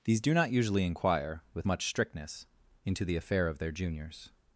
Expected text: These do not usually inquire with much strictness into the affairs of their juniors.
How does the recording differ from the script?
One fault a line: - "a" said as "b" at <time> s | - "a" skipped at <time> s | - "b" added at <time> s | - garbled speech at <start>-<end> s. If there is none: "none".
- "affairs" said as "affair" at 3.2 s